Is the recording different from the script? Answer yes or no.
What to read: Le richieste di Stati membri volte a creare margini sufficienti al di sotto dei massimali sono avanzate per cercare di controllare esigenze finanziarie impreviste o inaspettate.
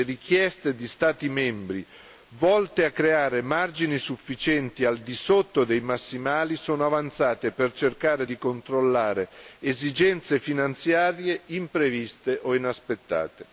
no